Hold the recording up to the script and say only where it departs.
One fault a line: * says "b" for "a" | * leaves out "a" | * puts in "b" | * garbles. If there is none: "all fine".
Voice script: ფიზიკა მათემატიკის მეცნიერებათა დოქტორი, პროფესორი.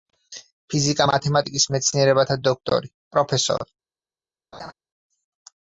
all fine